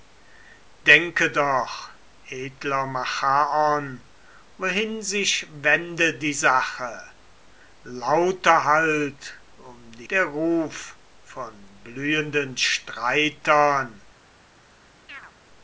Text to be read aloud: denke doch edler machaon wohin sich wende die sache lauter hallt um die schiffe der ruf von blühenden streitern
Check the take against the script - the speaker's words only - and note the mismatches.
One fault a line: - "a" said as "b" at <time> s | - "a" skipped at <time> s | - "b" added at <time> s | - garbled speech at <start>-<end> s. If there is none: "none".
- "schiffe" skipped at 10.1 s